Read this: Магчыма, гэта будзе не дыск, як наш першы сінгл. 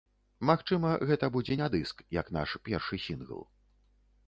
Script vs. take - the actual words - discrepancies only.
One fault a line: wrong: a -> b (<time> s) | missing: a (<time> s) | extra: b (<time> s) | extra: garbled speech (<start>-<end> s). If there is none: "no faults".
no faults